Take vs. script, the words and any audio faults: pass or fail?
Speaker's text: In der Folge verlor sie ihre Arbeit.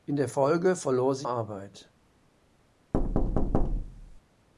fail